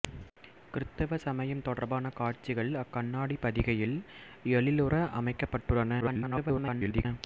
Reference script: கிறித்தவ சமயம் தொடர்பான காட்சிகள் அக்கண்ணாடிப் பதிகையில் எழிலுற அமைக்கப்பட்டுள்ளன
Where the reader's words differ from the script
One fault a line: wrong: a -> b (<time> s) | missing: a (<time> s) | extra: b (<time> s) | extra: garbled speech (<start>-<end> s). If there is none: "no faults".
extra: garbled speech (6.0-7.1 s)